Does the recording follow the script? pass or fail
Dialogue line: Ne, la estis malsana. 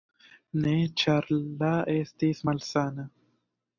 fail